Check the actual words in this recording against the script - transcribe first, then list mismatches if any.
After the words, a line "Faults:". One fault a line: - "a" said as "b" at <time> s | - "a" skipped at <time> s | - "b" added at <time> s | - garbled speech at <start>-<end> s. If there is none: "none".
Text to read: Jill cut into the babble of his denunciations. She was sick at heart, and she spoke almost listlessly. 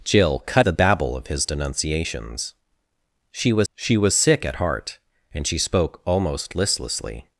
Jill cut the babble of his denunciations. She was she was sick at heart, and she spoke almost listlessly.
Faults:
- "into" skipped at 0.7 s
- "she was" added at 3.7 s